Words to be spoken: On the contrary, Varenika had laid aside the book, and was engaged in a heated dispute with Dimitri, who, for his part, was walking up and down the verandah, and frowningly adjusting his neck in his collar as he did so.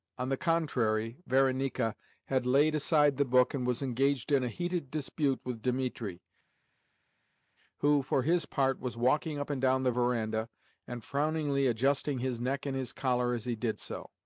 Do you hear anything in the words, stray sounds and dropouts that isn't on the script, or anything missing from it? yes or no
no